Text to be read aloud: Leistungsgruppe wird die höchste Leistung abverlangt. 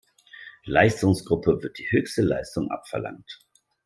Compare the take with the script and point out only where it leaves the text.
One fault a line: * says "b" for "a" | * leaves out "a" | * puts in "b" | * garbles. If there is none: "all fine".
all fine